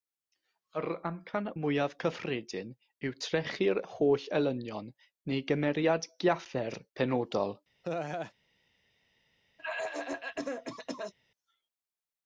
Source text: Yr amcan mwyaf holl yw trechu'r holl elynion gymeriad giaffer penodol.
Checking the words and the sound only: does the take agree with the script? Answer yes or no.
no